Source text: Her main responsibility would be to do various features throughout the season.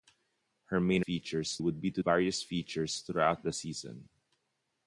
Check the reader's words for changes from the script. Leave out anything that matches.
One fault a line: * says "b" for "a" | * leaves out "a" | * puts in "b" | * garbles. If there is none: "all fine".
* says "features" for "responsibility"
* leaves out "do"